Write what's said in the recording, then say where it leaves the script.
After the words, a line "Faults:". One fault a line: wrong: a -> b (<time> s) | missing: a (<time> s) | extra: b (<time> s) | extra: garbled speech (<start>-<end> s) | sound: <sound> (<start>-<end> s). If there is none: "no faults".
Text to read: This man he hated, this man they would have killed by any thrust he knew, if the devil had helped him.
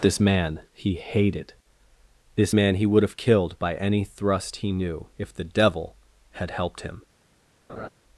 This man he hated, this man he would have killed by any thrust he knew, if the devil had helped him.
Faults:
wrong: they -> he (2.8 s)
sound: laugh (7.7-7.9 s)